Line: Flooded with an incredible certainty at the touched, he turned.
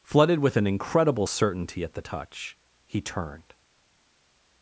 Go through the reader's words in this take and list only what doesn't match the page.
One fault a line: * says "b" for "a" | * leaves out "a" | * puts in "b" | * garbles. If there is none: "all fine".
* says "touch" for "touched"